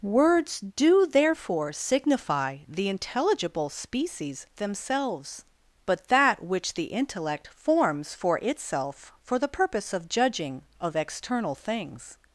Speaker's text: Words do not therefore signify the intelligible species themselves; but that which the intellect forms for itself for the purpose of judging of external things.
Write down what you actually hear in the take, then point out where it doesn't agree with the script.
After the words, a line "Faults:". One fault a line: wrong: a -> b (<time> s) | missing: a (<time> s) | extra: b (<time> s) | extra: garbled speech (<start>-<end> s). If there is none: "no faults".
Words do therefore signify the intelligible species themselves; but that which the intellect forms for itself for the purpose of judging of external things.
Faults:
missing: not (1.1 s)